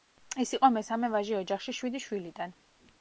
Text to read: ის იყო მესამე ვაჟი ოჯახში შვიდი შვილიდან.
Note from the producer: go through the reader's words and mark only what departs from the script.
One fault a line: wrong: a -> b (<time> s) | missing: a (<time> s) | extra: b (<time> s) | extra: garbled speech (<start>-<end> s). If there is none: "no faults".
no faults